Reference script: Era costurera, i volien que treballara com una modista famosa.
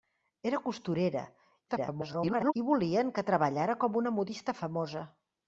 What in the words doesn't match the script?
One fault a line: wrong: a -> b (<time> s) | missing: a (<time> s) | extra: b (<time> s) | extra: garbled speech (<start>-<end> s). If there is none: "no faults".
extra: garbled speech (1.7-2.5 s)